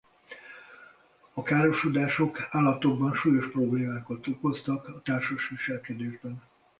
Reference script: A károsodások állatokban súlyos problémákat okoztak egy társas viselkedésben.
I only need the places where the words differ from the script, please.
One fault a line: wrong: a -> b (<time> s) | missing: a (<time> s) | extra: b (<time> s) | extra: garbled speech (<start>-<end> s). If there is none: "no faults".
wrong: egy -> a (4.9 s)